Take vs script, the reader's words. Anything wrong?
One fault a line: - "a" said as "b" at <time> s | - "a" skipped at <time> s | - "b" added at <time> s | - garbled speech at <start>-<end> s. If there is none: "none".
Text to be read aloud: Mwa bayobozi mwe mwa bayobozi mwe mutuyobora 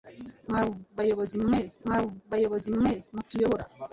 none